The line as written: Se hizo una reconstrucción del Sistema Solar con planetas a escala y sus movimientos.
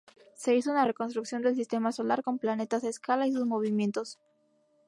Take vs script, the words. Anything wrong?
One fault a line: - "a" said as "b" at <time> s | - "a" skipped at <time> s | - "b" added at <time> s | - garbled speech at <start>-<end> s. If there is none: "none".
none